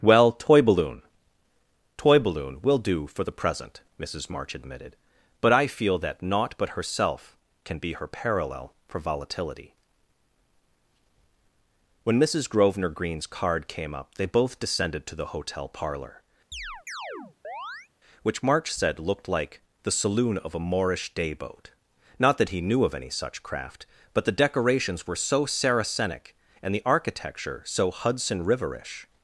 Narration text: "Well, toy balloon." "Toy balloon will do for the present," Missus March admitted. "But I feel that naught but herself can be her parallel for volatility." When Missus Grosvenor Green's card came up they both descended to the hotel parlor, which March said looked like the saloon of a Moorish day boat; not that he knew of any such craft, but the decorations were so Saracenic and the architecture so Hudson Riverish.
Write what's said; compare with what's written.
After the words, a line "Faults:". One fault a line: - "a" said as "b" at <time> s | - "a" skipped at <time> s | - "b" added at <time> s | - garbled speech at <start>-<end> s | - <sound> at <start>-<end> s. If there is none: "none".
"Well, toy balloon." "Toy balloon will do for the present," Missus March admitted. "But I feel that naught but herself can be her parallel for volatility." When Missus Grosvenor Green's card came up they both descended to the hotel parlor, which March said looked like the saloon of a Moorish day boat; not that he knew of any such craft, but the decorations were so Saracenic and the architecture so Hudson Riverish.
Faults:
- chirp at 16.5-17.9 s